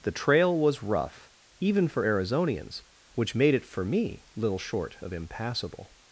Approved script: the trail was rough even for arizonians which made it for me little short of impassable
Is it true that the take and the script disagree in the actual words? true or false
false